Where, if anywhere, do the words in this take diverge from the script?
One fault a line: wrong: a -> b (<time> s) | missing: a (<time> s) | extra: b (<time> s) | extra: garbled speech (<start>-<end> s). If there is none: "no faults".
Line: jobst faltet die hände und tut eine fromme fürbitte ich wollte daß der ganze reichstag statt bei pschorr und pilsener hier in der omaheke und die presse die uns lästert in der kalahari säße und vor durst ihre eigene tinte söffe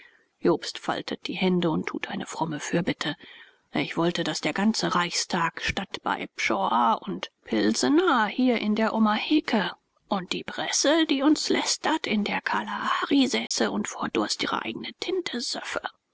no faults